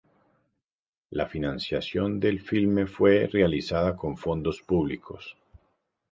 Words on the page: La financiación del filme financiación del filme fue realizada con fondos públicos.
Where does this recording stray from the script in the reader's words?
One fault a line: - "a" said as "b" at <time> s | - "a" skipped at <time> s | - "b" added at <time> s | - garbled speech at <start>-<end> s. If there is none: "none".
- "financiación del filme" skipped at 2.9 s